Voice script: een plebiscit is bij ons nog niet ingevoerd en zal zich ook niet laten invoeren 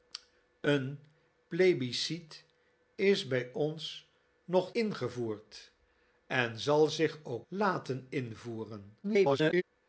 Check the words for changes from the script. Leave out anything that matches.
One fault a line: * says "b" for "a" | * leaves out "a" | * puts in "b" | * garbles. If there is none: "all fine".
* leaves out "niet"
* leaves out "niet"
* garbles